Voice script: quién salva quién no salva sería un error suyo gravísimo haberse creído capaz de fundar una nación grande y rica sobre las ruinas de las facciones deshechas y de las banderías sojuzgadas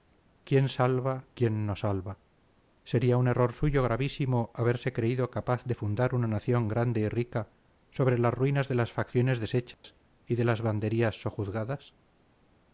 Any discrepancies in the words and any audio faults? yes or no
yes